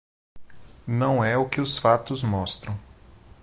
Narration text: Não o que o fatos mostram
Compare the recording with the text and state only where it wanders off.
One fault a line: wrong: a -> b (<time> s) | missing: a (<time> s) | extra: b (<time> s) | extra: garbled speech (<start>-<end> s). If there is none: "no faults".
extra: é (1.2 s)
wrong: o -> os (1.6 s)